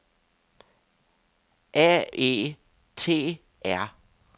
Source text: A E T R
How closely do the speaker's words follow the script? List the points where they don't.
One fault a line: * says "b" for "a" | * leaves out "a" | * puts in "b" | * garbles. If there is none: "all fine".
all fine